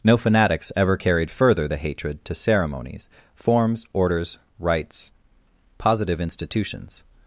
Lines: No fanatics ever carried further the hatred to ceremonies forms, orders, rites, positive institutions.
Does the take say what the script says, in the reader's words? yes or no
yes